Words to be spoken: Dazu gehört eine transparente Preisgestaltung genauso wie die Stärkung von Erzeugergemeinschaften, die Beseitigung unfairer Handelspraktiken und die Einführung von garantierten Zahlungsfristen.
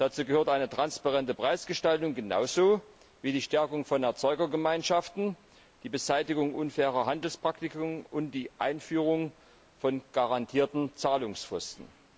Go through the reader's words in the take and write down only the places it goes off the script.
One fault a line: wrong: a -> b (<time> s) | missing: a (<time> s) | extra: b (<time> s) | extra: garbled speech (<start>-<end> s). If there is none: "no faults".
no faults